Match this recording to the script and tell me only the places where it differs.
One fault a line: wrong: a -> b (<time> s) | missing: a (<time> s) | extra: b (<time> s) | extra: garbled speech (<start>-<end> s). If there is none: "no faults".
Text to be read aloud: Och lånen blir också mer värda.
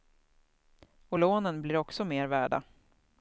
no faults